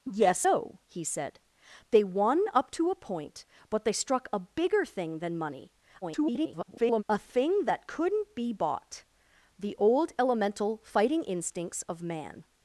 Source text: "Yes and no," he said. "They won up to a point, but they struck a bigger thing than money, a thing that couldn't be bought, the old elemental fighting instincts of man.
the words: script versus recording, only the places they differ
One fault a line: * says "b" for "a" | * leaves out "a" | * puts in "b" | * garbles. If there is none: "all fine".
* leaves out "and"
* garbles